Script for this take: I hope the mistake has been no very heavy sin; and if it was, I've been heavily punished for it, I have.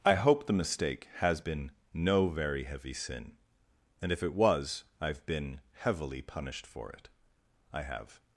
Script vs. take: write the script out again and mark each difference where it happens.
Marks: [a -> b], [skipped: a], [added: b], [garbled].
I hope the mistake has been no very heavy sin; and if it was, I've been heavily punished for it, I have.